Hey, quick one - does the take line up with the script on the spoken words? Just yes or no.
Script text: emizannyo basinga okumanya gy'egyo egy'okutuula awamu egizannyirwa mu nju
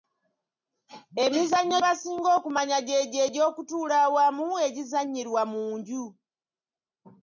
yes